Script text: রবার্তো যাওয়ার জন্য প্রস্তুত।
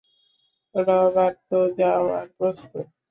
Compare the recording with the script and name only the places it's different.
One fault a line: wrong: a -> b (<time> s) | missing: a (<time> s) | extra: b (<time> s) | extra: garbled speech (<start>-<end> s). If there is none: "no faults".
missing: জন্য (2.3 s)